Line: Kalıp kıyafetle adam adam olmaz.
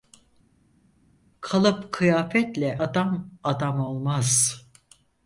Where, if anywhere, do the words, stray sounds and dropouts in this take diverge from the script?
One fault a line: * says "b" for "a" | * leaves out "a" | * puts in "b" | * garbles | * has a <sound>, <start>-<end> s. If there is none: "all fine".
all fine